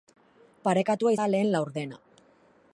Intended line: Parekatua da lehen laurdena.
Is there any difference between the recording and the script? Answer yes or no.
no